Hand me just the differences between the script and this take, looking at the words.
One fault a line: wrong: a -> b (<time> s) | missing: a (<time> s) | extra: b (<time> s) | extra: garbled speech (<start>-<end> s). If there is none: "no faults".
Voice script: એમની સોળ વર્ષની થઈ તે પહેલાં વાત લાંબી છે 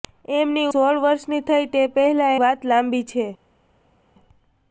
no faults